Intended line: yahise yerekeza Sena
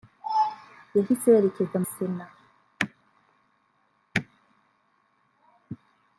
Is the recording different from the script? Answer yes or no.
no